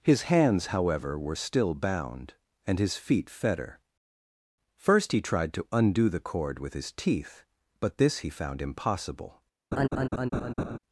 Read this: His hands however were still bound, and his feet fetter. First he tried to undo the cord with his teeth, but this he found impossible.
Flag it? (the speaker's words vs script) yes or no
no